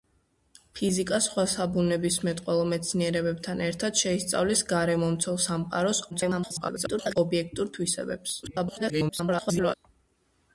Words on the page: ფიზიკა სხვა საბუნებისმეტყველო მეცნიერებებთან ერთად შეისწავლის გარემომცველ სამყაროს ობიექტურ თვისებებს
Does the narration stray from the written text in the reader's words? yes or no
yes